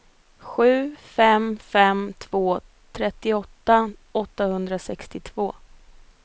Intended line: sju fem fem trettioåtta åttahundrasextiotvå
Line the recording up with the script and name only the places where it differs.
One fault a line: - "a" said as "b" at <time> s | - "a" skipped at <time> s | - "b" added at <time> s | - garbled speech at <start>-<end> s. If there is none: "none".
- "två" added at 2.2 s